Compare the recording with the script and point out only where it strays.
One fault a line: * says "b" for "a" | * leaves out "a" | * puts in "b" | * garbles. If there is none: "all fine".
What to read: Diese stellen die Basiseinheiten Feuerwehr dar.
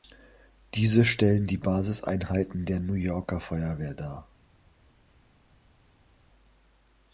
* puts in "der New Yorker"